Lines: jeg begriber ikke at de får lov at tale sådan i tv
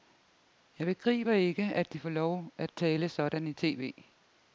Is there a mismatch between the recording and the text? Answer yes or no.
no